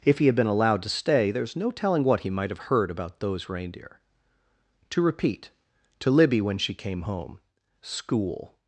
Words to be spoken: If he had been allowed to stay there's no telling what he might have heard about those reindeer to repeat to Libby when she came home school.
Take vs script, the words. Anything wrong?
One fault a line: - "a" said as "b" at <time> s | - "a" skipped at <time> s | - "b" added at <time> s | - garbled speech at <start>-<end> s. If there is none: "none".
none